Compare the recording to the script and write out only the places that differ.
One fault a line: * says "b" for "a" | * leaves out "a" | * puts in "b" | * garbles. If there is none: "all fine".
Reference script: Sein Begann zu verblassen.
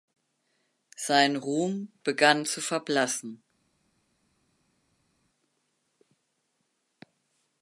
* puts in "Ruhm"